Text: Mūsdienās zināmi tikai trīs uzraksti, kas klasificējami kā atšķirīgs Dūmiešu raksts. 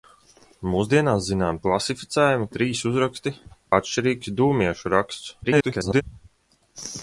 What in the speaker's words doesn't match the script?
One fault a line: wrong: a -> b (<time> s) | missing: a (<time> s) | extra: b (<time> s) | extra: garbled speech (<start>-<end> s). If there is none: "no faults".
wrong: tikai -> klasificējami (1.7 s)
missing: kas klasificējami kā (3.3 s)
extra: garbled speech (5.4-6.0 s)